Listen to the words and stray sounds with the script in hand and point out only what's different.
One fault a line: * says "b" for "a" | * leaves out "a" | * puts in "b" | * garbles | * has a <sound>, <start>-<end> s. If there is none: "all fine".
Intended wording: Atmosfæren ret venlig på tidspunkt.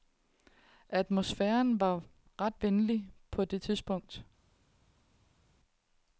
* puts in "var"
* puts in "det"